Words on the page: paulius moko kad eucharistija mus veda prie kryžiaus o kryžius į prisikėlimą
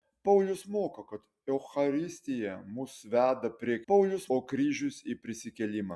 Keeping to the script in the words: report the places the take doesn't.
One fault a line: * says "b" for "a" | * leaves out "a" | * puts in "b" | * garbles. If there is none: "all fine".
* says "paulius" for "kryžiaus"